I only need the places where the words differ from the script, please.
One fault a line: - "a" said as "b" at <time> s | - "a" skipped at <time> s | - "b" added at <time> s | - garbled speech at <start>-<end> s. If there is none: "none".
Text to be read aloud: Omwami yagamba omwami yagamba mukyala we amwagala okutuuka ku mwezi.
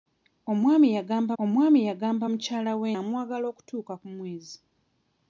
none